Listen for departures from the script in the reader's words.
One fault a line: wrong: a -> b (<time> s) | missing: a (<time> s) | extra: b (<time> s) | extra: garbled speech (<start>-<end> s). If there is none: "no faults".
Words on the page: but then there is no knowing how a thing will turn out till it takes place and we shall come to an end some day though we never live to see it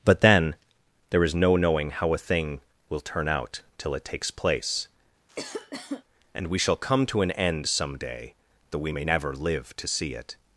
extra: may (8.9 s)